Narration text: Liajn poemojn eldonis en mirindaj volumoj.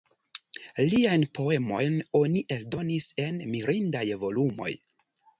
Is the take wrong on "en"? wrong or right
right